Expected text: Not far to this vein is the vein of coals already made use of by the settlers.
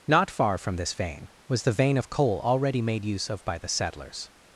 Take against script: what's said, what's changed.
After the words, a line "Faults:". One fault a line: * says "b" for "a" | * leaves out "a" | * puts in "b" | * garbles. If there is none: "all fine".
Not far from this vein was the vein of coal already made use of by the settlers.
Faults:
* says "from" for "to"
* says "was" for "is"
* says "coal" for "coals"